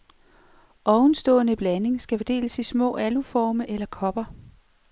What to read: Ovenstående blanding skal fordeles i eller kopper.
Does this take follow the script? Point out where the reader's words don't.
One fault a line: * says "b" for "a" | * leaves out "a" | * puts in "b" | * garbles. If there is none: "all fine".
* puts in "små aluforme"